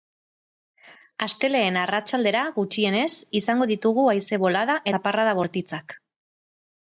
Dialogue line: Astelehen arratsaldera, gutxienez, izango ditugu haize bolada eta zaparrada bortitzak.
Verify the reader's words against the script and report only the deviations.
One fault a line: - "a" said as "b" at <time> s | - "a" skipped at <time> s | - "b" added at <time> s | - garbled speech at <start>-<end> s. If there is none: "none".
- "eta" skipped at 4.8 s